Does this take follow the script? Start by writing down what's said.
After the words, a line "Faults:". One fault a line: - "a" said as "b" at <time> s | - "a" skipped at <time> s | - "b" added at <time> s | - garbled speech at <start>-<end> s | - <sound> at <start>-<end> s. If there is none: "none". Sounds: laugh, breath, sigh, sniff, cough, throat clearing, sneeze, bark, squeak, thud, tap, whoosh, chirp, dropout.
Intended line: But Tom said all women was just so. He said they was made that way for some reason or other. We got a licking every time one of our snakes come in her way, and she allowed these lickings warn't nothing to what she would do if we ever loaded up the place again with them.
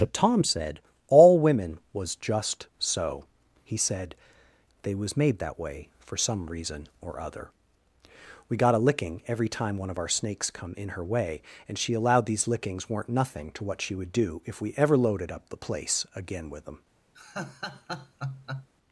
But Tom said all women was just so. He said they was made that way for some reason or other. We got a licking every time one of our snakes come in her way, and she allowed these lickings weren't nothing to what she would do if we ever loaded up the place again with them.
Faults:
- "warn't" said as "weren't" at 12.9 s
- laugh at 17.1-18.7 s